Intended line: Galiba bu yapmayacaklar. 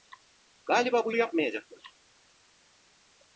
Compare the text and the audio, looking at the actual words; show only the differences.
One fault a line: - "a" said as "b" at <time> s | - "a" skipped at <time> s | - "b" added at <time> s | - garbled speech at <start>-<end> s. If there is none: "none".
none